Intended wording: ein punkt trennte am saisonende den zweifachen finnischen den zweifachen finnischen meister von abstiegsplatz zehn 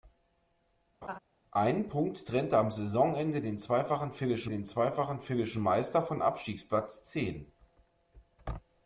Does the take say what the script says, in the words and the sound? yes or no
no